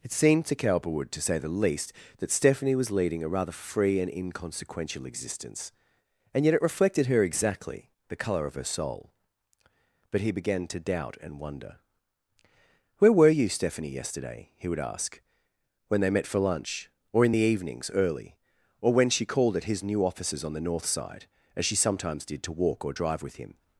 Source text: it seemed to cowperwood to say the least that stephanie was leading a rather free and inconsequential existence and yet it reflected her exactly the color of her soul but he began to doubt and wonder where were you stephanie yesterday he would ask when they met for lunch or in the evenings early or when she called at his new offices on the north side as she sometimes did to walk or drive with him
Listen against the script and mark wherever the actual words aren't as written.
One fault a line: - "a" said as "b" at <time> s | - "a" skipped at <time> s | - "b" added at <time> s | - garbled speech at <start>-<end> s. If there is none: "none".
none